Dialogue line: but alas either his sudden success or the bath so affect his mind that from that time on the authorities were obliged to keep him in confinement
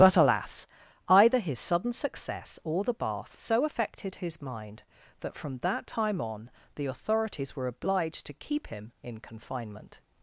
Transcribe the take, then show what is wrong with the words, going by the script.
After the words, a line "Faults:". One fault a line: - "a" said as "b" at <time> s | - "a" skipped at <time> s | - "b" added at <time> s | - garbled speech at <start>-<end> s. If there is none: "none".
but alas either his sudden success or the bath so affected his mind that from that time on the authorities were obliged to keep him in confinement
Faults:
- "affect" said as "affected" at 3.6 s